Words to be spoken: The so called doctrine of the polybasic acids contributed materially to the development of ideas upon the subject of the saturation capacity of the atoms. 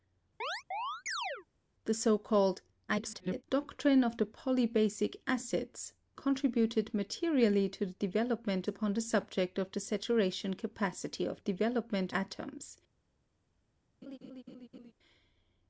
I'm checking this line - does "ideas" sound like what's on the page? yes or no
no